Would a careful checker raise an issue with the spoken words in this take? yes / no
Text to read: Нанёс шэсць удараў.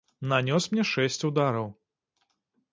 yes